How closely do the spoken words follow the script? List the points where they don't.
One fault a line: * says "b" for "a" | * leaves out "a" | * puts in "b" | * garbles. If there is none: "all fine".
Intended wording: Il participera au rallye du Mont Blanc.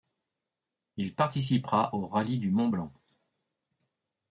all fine